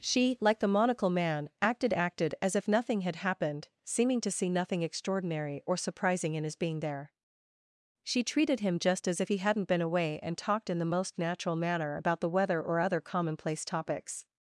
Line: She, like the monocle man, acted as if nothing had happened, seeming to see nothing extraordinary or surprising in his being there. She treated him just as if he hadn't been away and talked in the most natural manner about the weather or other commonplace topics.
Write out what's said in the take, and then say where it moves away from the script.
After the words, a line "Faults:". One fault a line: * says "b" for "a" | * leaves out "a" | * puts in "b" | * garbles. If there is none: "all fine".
She, like the monocle man, acted acted as if nothing had happened, seeming to see nothing extraordinary or surprising in his being there. She treated him just as if he hadn't been away and talked in the most natural manner about the weather or other commonplace topics.
Faults:
* puts in "acted"